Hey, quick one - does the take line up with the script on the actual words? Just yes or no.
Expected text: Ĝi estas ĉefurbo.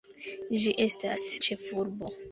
yes